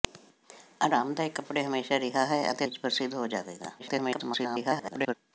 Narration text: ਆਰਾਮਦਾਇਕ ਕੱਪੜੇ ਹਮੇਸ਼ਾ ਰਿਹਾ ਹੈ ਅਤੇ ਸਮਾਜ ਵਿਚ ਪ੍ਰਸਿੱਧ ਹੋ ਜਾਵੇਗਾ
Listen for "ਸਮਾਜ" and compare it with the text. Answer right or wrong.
wrong